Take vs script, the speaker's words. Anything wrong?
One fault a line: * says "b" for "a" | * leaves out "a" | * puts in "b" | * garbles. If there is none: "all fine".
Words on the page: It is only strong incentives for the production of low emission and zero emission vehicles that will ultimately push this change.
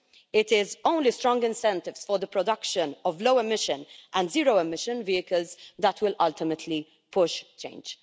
* leaves out "this"